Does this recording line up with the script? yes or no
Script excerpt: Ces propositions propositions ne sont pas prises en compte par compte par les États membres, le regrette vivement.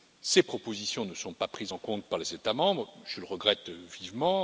no